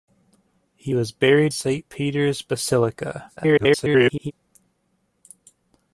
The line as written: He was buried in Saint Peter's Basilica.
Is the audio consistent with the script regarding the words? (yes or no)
no